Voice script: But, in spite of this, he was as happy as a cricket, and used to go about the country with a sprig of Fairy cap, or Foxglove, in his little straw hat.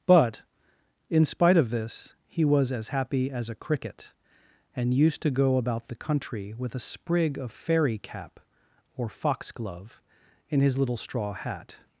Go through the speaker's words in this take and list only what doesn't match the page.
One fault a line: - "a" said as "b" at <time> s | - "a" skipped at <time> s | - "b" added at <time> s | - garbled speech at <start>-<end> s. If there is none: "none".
none